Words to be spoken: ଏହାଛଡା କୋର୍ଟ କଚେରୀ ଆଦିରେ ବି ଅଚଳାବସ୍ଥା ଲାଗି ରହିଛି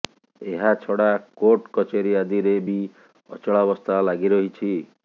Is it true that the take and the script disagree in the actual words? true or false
false